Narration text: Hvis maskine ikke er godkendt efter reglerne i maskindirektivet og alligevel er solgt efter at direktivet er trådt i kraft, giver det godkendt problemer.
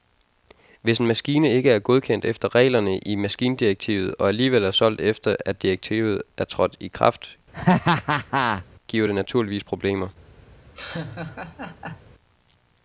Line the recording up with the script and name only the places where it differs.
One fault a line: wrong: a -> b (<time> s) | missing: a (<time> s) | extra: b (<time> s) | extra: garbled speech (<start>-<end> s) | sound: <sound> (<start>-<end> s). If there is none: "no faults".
extra: en (1.0 s)
sound: laugh (7.5-8.7 s)
wrong: godkendt -> naturligvis (9.1 s)
sound: laugh (10.7-12.1 s)